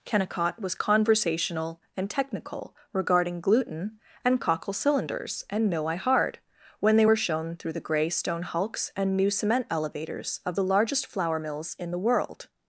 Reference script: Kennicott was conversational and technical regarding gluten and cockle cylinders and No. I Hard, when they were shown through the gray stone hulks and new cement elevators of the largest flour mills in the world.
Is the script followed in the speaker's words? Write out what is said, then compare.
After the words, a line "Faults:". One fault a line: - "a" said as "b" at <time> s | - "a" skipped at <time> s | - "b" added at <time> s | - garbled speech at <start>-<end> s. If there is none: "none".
Kennicott was conversational and technical regarding gluten and cockle cylinders and No. I Hard, when they were shown through the gray stone hulks and new cement elevators of the largest flour mills in the world.
Faults:
none